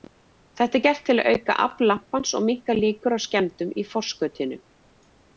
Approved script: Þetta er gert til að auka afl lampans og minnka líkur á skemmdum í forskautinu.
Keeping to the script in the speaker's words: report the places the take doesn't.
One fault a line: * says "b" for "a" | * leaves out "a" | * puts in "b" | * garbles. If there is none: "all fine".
all fine